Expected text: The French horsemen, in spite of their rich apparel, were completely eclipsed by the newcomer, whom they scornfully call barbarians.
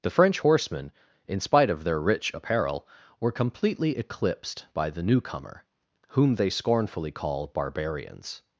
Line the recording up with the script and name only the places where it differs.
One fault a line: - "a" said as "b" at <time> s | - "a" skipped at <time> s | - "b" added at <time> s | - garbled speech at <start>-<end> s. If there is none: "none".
none